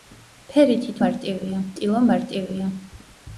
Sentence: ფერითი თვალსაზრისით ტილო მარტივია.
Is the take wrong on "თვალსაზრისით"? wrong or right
wrong